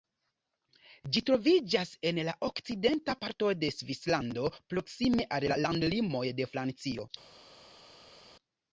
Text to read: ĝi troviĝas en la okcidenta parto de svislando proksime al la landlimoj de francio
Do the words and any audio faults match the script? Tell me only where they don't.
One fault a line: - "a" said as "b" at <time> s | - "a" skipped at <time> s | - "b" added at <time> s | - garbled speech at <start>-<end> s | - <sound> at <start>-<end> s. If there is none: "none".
none